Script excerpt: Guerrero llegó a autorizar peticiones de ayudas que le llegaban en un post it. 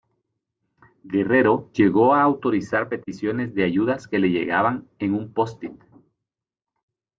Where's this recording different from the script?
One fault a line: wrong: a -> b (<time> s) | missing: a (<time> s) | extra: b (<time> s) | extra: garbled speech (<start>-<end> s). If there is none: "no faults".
no faults